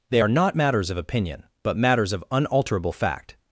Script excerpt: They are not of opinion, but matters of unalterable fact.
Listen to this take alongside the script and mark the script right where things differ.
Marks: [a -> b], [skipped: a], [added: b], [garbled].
They are not [added: matters] of opinion, but matters of unalterable fact.